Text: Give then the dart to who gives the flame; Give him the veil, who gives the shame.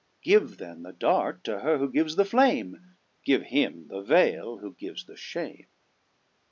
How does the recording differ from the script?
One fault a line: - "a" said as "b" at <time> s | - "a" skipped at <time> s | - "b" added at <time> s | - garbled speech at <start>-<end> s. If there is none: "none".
- "her" added at 1.6 s